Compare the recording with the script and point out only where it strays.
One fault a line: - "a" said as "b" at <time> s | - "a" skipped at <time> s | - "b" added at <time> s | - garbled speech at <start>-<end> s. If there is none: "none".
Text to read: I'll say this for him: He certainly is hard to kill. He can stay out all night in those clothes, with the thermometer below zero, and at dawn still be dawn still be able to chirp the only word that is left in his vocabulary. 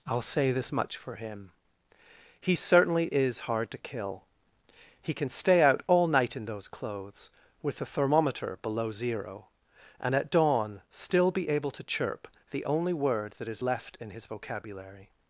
- "much" added at 0.7 s
- "dawn still be" skipped at 11.5 s